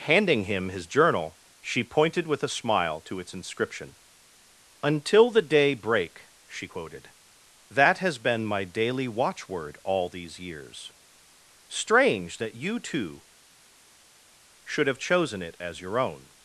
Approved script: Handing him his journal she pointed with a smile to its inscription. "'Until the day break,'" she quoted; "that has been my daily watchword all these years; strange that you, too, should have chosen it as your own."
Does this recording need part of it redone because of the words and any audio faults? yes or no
no